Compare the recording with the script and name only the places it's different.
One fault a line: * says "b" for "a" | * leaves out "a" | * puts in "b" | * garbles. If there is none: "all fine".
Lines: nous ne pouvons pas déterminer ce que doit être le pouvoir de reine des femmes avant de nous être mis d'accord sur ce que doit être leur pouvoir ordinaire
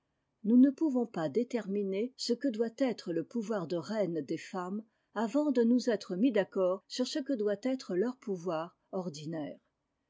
all fine